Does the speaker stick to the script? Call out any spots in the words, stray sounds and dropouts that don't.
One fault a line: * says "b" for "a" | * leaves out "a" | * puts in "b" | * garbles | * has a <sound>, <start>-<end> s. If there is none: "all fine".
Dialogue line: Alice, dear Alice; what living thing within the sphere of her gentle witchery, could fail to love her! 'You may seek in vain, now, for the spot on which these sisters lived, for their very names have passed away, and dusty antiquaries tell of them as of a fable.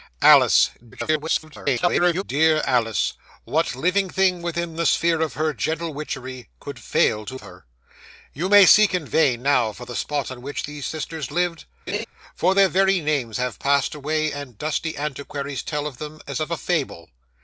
* garbles
* leaves out "love"
* has a laugh, 11.9-12.0 s